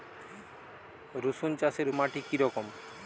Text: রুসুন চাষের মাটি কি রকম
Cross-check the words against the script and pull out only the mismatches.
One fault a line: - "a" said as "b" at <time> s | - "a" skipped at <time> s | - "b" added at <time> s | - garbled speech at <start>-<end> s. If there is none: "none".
none